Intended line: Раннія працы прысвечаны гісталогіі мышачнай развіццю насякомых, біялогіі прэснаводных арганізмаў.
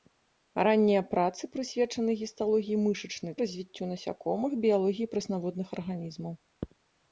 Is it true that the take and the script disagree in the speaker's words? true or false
false